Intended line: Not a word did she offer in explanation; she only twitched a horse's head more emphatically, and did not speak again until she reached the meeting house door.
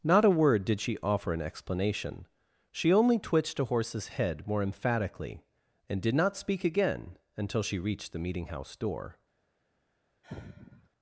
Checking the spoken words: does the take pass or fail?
pass